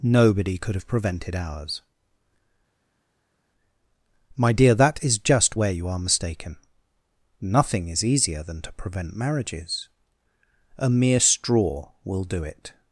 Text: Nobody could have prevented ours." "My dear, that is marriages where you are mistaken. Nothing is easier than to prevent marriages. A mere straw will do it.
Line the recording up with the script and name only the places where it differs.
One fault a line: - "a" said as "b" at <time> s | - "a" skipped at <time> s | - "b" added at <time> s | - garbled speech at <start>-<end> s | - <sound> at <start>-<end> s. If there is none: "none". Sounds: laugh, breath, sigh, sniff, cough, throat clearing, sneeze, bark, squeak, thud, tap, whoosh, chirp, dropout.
- "marriages" said as "just" at 5.2 s